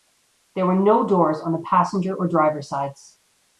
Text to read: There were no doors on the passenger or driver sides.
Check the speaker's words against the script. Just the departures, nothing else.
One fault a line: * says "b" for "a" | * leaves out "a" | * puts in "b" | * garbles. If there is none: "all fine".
all fine